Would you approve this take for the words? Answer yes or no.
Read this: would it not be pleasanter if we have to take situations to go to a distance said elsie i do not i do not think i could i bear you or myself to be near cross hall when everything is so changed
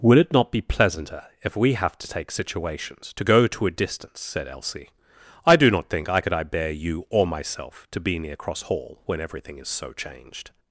no